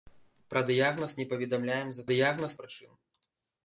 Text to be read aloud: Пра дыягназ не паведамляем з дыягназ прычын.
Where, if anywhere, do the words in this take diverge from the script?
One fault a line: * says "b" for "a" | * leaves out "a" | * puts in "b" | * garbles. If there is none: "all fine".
all fine